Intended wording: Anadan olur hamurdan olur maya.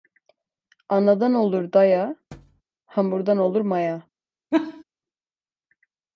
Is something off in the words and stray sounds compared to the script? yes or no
yes